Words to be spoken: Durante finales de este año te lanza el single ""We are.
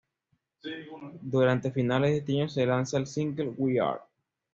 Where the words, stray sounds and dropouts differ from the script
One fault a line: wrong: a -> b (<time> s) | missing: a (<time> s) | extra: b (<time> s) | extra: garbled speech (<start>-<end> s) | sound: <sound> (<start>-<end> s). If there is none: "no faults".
wrong: te -> se (2.5 s)